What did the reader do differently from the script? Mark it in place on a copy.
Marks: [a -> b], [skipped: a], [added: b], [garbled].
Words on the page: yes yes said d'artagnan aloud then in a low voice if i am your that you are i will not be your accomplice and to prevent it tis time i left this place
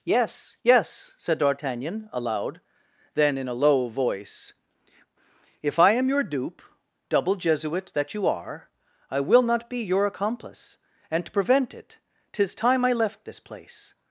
yes yes said d'artagnan aloud then in a low voice if i am your [added: dupe double jesuit] that you are i will not be your accomplice and to prevent it tis time i left this place